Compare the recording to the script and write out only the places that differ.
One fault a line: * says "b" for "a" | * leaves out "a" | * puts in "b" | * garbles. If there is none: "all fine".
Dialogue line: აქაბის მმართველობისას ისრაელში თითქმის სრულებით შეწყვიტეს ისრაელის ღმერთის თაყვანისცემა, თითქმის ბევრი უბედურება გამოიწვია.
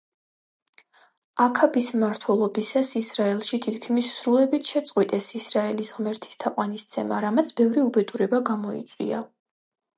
* says "რამაც" for "თითქმის"